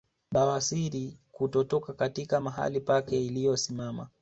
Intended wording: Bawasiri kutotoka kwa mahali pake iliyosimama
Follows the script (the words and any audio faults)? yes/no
no